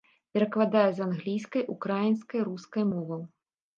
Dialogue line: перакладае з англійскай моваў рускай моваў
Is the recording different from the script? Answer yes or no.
yes